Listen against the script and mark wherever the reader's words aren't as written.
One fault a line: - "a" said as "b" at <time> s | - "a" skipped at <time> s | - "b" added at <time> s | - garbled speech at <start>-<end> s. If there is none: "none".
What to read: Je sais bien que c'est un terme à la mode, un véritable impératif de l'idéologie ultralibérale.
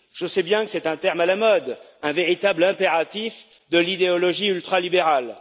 none